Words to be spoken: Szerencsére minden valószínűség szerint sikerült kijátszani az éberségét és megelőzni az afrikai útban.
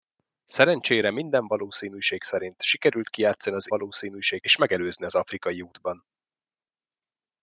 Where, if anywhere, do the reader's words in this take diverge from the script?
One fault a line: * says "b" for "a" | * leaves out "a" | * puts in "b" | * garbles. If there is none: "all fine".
* says "valószínűség" for "éberségét"